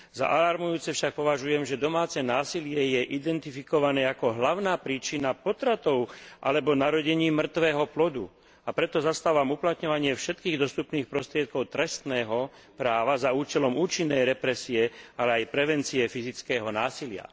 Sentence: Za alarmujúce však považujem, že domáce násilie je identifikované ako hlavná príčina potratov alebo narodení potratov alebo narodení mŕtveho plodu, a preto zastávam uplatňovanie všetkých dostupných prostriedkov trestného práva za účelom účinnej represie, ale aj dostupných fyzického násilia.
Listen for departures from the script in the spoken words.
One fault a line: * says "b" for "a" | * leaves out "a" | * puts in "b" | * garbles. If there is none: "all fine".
* leaves out "potratov alebo narodení"
* says "prevencie" for "dostupných"